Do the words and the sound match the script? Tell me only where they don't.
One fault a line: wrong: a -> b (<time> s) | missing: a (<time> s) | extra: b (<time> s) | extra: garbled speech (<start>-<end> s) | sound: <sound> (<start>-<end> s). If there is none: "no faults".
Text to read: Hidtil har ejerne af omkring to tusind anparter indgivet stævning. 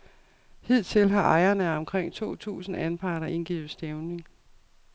no faults